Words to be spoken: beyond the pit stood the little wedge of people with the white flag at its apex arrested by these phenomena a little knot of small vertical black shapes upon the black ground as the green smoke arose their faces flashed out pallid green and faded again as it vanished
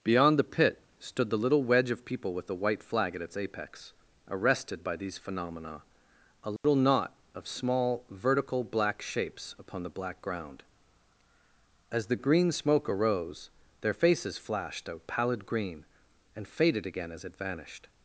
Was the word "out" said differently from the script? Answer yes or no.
yes